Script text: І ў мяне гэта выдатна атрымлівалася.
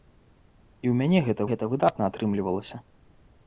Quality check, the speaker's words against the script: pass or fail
fail